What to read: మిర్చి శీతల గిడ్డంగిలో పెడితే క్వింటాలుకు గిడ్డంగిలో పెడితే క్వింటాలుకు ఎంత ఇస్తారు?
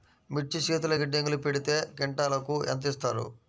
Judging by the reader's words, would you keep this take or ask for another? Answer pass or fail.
fail